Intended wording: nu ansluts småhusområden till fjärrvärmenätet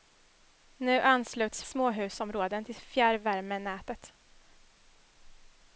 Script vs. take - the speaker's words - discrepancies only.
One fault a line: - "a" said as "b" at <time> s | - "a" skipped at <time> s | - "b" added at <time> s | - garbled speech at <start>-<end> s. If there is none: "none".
none